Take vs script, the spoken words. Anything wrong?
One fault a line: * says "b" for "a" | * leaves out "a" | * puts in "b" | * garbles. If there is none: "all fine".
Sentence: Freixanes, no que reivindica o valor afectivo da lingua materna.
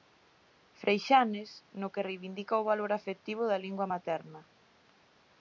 all fine